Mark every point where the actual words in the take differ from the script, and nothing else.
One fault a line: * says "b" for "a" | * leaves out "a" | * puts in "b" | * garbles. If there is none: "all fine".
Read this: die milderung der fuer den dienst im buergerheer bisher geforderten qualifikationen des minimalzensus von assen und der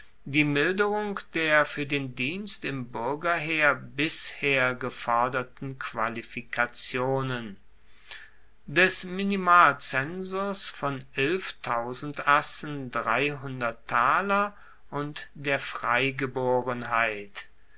all fine